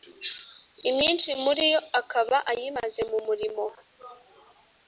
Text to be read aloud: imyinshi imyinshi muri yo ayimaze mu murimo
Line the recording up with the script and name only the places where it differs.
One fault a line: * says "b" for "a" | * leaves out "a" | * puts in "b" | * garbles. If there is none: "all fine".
* leaves out "imyinshi"
* puts in "akaba"